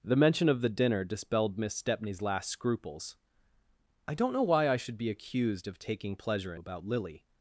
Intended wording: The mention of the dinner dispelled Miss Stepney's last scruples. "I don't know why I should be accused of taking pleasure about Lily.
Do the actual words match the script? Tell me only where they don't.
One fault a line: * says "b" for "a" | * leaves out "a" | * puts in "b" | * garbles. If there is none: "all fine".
all fine